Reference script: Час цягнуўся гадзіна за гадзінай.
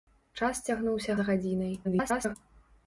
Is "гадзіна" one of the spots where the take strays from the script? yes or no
yes